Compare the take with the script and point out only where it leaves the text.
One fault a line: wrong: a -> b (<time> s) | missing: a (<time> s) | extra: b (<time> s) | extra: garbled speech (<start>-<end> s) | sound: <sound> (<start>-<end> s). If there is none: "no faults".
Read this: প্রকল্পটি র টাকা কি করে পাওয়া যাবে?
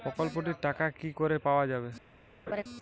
sound: laugh (2.5-2.6 s)